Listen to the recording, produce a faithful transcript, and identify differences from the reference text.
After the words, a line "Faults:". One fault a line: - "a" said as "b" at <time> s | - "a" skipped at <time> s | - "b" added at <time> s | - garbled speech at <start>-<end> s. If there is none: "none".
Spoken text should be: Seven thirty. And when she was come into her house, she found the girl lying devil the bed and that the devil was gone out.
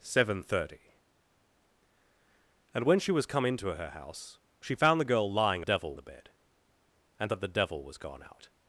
Seven thirty. And when she was come into her house, she found the girl lying devil the bed and that the devil was gone out.
Faults:
none